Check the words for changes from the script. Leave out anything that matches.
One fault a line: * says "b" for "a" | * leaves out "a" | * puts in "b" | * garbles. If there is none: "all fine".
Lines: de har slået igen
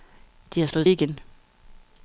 all fine